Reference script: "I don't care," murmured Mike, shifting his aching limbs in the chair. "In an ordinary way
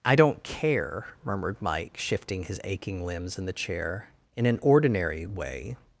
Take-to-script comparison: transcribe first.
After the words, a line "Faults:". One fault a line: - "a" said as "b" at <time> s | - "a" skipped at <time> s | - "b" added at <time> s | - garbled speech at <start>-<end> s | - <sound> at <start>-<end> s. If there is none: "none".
"I don't care," murmured Mike, shifting his aching limbs in the chair. "In an ordinary way
Faults:
none